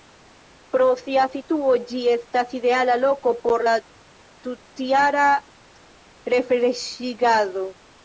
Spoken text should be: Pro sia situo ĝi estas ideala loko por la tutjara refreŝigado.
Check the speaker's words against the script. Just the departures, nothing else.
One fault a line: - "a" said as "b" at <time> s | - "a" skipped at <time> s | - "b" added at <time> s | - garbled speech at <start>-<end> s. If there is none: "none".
none